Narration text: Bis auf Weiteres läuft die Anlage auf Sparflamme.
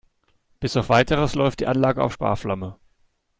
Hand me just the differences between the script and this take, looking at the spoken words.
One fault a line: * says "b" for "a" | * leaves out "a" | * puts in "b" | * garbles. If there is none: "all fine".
all fine